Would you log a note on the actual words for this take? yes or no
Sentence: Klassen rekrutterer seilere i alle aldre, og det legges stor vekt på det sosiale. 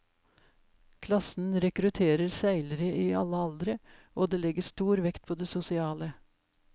no